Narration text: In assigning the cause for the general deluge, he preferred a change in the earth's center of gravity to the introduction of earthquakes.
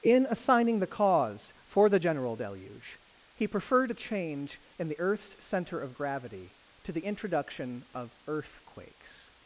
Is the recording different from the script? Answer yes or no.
no